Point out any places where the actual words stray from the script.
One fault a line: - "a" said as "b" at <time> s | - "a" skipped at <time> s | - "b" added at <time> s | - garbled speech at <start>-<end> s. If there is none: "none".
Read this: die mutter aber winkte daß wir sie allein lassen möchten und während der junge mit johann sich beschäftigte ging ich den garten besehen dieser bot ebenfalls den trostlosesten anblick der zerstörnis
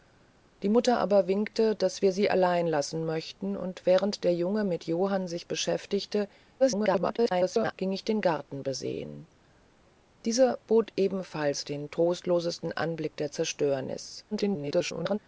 - garbled speech at 6.6-7.7 s
- garbled speech at 14.3-15.2 s